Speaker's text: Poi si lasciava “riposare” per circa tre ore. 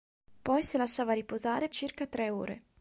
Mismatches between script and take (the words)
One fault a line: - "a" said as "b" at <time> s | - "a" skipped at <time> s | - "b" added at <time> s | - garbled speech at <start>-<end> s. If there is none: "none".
- "per" skipped at 1.7 s